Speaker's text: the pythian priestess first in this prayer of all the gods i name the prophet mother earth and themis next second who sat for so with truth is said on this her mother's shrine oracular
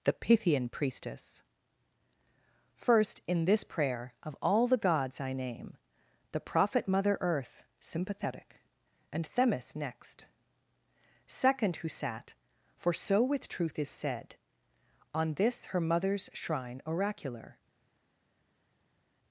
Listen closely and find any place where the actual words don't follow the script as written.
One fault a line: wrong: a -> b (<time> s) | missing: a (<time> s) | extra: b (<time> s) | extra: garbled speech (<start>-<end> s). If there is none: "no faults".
extra: sympathetic (7.8 s)